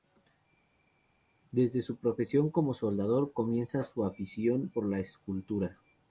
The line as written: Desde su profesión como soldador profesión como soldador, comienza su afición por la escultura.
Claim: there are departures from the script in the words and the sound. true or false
true